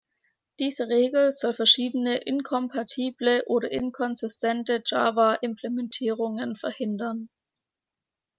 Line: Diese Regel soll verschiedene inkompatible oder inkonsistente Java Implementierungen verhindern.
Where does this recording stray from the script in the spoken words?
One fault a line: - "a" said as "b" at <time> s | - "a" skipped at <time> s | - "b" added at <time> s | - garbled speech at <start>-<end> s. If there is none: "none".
none